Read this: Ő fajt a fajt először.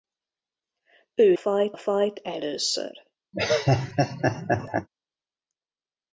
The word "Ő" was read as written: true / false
true